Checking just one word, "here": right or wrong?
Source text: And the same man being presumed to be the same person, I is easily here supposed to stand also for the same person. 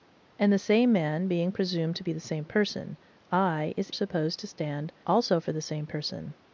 wrong